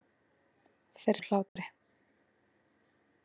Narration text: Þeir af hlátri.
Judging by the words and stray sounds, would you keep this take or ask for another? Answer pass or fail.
fail